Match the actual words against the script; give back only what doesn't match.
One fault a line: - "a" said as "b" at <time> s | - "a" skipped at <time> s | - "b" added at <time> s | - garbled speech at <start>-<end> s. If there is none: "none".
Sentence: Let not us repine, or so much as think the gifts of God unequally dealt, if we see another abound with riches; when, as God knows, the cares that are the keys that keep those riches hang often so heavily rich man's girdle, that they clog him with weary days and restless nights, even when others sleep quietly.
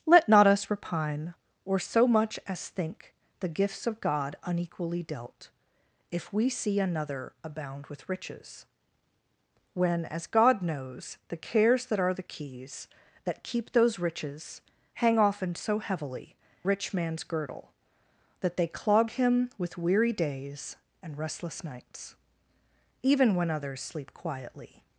none